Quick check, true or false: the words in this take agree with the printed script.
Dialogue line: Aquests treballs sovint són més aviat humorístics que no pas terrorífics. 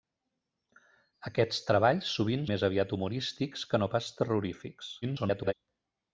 false